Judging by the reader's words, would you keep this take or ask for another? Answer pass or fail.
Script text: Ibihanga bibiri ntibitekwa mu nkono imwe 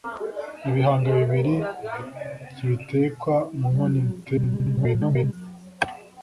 fail